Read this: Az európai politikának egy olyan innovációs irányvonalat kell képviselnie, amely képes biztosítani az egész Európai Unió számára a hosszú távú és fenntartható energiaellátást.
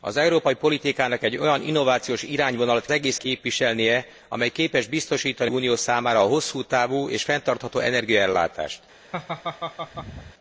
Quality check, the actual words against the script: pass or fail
fail